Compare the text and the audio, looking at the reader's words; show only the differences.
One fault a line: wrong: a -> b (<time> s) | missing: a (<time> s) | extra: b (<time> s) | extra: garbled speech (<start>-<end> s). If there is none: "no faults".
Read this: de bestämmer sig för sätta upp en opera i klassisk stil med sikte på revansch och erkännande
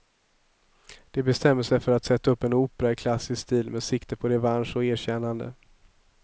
extra: att (1.9 s)